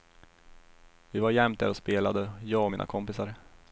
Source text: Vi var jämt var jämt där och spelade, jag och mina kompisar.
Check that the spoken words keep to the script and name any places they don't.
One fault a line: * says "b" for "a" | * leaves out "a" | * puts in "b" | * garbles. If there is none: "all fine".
* leaves out "var jämt"